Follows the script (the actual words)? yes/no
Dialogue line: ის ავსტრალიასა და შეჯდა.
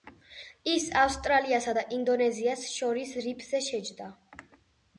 no